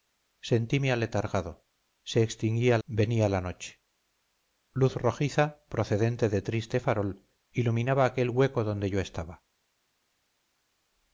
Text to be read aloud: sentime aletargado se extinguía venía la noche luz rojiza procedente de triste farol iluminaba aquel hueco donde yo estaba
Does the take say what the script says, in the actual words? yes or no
yes